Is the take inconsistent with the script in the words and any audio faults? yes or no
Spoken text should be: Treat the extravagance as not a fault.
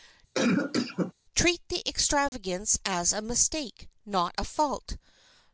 yes